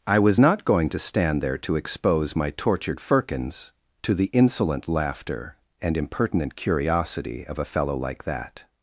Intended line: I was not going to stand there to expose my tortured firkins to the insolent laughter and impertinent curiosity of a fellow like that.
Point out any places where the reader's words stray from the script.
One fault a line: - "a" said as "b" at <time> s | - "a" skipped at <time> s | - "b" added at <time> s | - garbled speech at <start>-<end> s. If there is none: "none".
none